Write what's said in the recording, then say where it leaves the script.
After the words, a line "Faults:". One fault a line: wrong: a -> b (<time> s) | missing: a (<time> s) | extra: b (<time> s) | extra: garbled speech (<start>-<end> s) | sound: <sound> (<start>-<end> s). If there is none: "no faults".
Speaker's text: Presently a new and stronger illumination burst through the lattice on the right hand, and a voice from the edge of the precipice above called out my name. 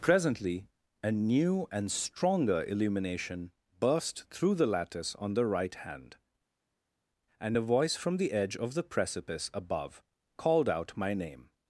Presently a new and stronger illumination burst through the lattice on the right hand, and a voice from the edge of the precipice above called out my name.
Faults:
no faults